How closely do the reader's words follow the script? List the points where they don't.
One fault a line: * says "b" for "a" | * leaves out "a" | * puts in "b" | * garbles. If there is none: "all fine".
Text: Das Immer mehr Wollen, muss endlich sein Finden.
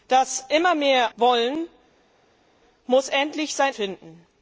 all fine